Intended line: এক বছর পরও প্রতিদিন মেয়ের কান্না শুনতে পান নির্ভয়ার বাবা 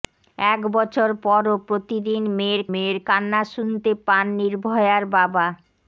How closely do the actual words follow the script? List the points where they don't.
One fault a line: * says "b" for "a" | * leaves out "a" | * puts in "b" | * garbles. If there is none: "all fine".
* puts in "মেয়ের"